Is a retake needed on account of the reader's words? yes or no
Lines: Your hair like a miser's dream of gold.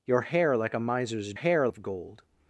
yes